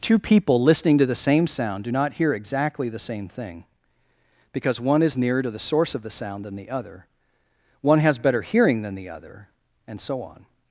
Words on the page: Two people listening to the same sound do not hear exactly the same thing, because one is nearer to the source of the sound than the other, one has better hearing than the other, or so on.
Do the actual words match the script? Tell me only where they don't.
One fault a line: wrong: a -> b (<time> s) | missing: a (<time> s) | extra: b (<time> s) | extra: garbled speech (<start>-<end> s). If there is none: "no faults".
wrong: or -> and (9.9 s)